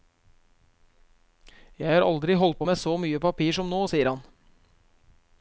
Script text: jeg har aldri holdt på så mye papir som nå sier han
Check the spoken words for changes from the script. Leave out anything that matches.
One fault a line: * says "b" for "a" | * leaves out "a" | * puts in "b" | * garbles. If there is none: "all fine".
* puts in "med"